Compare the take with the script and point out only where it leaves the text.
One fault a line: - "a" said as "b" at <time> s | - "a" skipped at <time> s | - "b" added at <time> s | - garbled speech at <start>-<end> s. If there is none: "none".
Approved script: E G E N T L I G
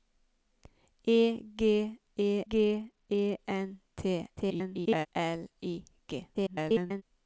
- "G E" added at 2.5 s
- garbled speech at 4.4-5.1 s
- garbled speech at 6.3-7.0 s